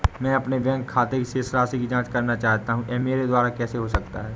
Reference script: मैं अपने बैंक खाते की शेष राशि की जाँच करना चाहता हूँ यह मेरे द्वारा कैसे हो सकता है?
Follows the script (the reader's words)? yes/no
yes